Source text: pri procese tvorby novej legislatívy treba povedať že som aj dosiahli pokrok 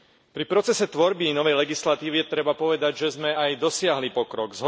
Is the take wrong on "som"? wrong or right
wrong